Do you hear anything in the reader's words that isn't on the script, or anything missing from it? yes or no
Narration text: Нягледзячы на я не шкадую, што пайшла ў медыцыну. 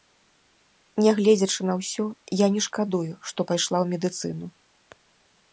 yes